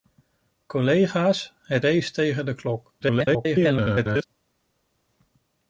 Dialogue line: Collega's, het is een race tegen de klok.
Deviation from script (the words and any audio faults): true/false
true